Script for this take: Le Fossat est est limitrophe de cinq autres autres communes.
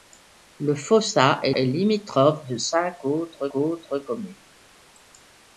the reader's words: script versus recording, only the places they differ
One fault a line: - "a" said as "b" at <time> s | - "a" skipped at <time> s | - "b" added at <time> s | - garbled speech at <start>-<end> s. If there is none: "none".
none